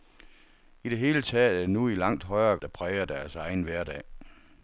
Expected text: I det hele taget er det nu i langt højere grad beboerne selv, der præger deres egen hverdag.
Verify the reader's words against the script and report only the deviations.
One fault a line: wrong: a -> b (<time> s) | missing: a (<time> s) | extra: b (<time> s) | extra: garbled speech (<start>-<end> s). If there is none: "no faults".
missing: grad beboerne selv (2.6 s)